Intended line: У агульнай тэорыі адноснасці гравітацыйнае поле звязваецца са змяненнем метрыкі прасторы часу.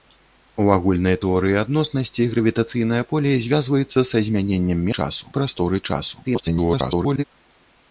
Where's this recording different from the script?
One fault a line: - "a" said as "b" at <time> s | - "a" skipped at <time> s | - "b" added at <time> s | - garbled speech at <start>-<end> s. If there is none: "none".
- "метрыкі" said as "часу" at 5.0 s
- garbled speech at 6.2-7.2 s